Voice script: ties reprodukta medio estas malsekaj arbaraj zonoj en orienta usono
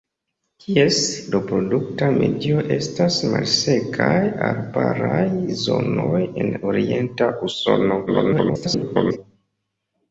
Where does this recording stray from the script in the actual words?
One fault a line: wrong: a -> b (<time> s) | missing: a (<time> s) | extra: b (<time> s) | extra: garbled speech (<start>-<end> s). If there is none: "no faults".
extra: garbled speech (8.1-9.2 s)